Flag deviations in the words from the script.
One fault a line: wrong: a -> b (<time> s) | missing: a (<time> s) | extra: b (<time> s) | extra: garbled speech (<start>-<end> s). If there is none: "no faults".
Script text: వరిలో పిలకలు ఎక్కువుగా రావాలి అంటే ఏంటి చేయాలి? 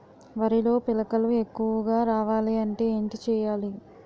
no faults